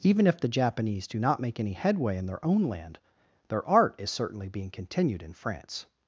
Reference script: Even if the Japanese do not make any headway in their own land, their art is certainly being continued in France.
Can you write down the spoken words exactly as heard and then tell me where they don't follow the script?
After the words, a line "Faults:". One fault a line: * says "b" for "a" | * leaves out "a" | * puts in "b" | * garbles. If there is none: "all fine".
Even if the Japanese do not make any headway in their own land, their art is certainly being continued in France.
Faults:
all fine